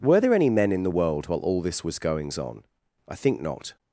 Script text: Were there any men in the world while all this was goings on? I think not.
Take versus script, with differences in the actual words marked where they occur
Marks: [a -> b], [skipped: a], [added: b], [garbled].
Were there any men in the world while all this was goings on? I think not.